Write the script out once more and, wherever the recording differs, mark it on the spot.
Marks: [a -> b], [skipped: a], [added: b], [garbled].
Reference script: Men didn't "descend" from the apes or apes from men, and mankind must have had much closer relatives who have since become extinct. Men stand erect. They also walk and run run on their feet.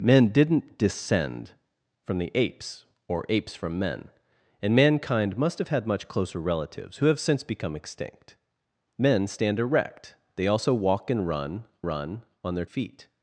Men didn't "descend" from the apes or apes from men, and mankind must have had much closer relatives who have since become extinct. Men stand erect. They also walk and run run on their feet.